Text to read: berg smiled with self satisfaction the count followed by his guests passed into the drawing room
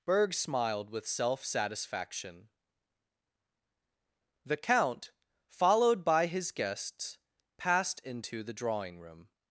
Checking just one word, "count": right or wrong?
right